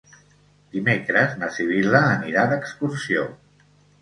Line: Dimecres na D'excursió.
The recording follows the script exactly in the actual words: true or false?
false